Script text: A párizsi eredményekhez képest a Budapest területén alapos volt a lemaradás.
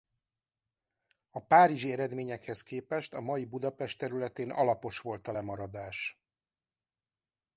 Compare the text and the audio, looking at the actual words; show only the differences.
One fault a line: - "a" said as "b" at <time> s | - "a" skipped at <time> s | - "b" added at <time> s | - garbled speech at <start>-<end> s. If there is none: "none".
- "mai" added at 3.2 s